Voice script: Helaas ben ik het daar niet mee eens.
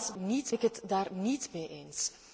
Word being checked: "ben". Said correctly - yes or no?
no